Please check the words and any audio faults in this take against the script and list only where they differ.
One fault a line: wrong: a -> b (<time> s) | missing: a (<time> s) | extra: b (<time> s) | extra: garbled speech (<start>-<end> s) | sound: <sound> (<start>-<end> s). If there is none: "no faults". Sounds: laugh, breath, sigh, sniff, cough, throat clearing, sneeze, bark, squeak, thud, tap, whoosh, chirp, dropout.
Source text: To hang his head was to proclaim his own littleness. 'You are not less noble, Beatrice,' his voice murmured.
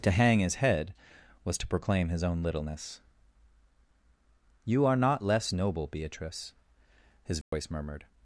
sound: dropout (7.4-7.5 s)